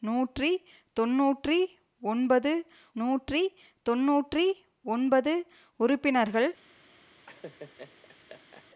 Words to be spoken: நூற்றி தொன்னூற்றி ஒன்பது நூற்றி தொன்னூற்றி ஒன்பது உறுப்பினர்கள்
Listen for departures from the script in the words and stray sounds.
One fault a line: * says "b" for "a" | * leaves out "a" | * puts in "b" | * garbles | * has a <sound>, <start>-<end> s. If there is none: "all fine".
* has a laugh, 7.3-8.7 s